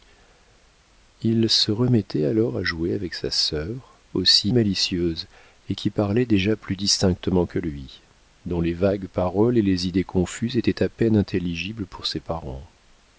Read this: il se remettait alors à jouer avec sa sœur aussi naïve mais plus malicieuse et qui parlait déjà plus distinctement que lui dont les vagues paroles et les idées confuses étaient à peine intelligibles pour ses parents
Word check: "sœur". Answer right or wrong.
right